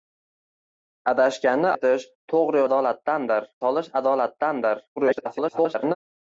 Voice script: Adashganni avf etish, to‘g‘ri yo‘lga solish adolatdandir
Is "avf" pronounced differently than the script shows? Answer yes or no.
yes